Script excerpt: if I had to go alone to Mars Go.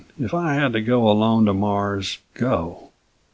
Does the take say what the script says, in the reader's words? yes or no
yes